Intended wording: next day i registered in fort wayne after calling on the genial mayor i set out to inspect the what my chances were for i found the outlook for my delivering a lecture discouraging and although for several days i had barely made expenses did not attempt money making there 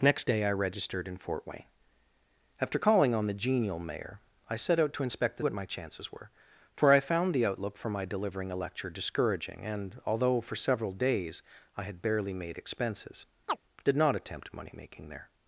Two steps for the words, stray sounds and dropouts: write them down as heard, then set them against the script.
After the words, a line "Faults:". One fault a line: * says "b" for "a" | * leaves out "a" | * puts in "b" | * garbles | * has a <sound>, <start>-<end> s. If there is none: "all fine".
next day i registered in fort wayne after calling on the genial mayor i set out to inspect the what my chances were for i found the outlook for my delivering a lecture discouraging and although for several days i had barely made expenses did not attempt money making there
Faults:
* has a chirp, 13.5-13.6 s